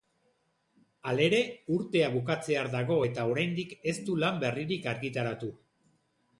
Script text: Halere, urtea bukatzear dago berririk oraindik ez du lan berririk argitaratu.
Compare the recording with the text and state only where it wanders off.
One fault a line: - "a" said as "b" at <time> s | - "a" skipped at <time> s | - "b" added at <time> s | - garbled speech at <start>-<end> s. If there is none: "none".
- "berririk" said as "eta" at 3.1 s